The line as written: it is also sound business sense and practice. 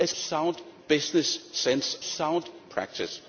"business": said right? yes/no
yes